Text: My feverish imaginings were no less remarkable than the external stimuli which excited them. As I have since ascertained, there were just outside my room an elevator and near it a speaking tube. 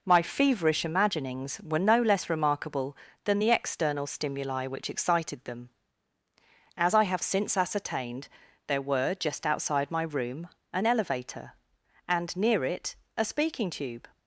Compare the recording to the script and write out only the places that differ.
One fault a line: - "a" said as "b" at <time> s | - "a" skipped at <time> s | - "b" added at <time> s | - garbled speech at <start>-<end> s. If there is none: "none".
none